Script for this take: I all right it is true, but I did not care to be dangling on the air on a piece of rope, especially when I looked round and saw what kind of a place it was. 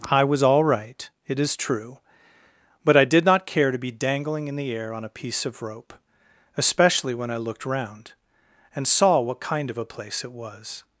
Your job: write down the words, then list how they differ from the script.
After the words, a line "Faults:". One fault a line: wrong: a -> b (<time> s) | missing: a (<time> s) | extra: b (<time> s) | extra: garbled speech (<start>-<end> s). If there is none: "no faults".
I was all right it is true, but I did not care to be dangling in the air on a piece of rope, especially when I looked round and saw what kind of a place it was.
Faults:
extra: was (0.2 s)
wrong: on -> in (4.5 s)